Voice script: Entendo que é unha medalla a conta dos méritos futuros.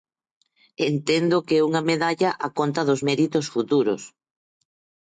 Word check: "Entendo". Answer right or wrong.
right